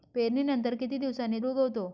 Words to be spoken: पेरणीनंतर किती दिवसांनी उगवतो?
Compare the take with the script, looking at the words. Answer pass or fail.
pass